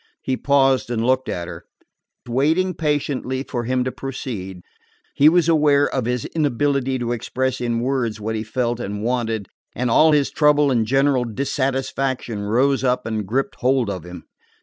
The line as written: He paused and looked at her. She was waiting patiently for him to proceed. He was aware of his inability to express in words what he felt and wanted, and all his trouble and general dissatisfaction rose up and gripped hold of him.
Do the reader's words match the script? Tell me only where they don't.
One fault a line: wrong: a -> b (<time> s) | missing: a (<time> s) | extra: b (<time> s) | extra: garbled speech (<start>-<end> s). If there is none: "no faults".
missing: She was (1.6 s)